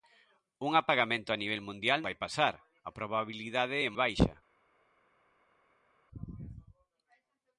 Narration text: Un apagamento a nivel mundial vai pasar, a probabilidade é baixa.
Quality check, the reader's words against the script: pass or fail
pass